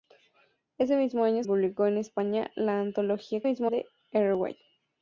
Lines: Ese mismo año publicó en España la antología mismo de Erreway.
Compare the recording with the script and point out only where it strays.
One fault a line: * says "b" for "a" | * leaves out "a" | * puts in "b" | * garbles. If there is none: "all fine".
all fine